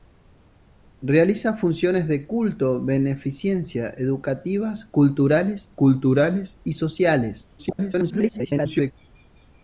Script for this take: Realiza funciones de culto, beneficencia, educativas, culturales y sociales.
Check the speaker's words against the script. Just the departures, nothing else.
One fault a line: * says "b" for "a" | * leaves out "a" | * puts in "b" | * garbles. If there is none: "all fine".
* puts in "culturales"
* garbles